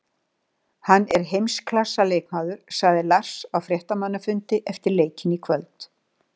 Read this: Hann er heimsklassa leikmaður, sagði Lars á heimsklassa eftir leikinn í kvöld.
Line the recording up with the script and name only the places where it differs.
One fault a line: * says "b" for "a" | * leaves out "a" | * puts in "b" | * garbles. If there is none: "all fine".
* says "fréttamannafundi" for "heimsklassa"